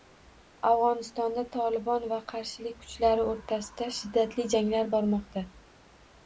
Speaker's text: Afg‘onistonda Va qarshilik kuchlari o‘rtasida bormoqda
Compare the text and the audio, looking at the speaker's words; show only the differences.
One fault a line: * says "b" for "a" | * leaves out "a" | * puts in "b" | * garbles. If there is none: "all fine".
* puts in "Tolibon"
* puts in "shiddatli janglar"